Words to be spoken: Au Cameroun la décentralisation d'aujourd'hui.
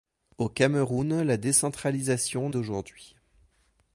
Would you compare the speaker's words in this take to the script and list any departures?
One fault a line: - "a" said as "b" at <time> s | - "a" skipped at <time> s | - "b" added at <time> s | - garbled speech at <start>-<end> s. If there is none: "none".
none